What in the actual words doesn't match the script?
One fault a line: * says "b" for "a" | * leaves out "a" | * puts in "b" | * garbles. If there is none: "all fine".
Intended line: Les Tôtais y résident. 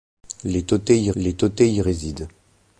* puts in "les Tôtais y"